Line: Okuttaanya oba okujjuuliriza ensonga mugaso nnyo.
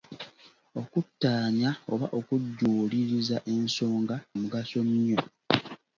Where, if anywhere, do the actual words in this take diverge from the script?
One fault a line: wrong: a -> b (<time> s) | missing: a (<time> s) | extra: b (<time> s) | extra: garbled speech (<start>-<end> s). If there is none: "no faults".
no faults